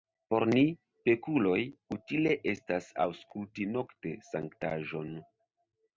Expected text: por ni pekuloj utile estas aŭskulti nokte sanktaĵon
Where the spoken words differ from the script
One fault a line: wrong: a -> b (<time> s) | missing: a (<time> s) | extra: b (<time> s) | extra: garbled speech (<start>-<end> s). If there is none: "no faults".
no faults